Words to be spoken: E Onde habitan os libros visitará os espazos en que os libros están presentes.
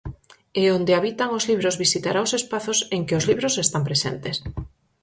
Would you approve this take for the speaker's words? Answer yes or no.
yes